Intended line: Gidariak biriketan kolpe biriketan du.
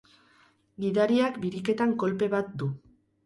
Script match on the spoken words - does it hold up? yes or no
no